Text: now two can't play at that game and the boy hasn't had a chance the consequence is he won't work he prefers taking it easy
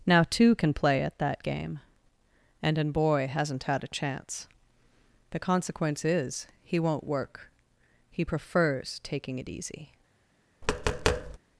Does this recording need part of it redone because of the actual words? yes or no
yes